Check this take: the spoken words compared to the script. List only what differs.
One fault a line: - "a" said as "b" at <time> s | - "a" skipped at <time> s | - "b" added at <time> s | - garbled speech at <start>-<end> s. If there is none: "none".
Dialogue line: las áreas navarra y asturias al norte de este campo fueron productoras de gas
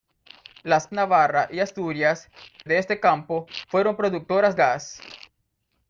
- "áreas" skipped at 0.9 s
- "al norte" skipped at 2.3 s
- "de" skipped at 4.6 s